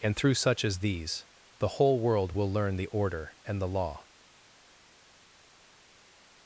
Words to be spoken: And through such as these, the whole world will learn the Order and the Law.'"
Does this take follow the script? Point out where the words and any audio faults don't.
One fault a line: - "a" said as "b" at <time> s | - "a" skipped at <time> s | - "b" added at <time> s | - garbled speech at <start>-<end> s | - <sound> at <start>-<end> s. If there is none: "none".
none